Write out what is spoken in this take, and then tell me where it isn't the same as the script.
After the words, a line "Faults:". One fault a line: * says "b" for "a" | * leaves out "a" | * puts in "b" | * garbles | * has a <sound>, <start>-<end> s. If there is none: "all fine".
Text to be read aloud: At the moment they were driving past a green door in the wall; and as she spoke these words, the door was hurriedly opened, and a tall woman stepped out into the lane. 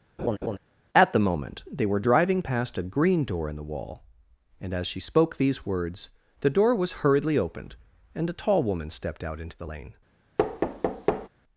At the moment they were driving past a green door in the wall; and as she spoke these words, the door was hurriedly opened, and a tall woman stepped out into the lane.
Faults:
* has a laugh, 0.2-0.6 s
* has a thud, 10.4-11.3 s